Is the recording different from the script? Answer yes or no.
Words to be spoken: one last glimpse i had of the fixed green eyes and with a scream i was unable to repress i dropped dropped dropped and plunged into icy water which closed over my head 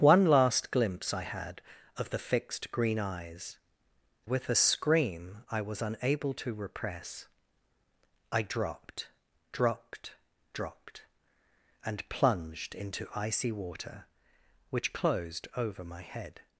yes